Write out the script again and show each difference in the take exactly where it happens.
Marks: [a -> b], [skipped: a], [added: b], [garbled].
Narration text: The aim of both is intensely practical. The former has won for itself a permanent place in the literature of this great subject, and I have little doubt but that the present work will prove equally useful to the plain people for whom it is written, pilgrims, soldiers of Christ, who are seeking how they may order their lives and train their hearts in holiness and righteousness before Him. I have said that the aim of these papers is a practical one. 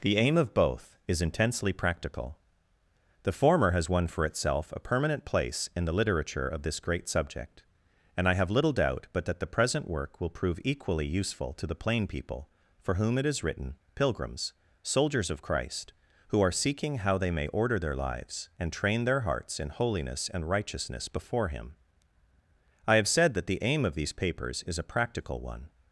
The aim of both is intensely practical. The former has won for itself a permanent place in the literature of this great subject, and I have little doubt but that the present work will prove equally useful to the plain people for whom it is written, pilgrims, soldiers of Christ, who are seeking how they may order their lives and train their hearts in holiness and righteousness before Him. I have said that the aim of these papers is a practical one.